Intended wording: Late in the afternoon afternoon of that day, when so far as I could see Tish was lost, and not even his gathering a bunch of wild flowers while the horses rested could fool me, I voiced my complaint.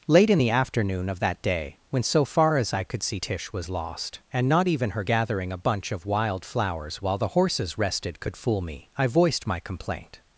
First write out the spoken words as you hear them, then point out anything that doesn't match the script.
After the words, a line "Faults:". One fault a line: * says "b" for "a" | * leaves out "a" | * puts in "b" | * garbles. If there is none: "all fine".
Late in the afternoon of that day, when so far as I could see Tish was lost, and not even her gathering a bunch of wild flowers while the horses rested could fool me, I voiced my complaint.
Faults:
* leaves out "afternoon"
* says "her" for "his"